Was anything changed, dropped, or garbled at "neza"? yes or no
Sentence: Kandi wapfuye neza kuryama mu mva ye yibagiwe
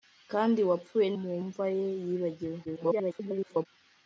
yes